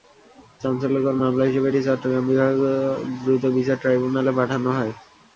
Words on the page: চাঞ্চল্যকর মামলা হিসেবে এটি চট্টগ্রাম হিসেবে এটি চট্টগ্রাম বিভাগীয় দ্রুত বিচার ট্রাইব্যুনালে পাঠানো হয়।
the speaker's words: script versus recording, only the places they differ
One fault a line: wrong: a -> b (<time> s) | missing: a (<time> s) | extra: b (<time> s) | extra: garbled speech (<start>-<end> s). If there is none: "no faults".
missing: হিসেবে এটি চট্টগ্রাম (2.2 s)